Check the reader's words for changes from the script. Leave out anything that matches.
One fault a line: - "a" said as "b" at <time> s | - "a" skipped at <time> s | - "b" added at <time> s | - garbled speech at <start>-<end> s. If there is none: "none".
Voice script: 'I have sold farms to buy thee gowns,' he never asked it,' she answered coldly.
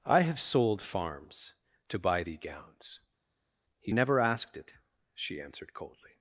none